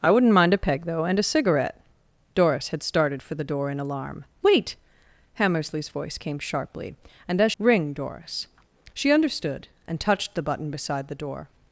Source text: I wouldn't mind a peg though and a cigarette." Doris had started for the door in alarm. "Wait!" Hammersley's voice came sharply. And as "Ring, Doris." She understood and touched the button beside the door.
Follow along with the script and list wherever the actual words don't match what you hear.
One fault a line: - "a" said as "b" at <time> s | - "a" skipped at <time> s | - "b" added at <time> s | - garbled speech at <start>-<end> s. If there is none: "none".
none